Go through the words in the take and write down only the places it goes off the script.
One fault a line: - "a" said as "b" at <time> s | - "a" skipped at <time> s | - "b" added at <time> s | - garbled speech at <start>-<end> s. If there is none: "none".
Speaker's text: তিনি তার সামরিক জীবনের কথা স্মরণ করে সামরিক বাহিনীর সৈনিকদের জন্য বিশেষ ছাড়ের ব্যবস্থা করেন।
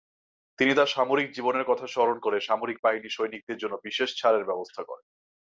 none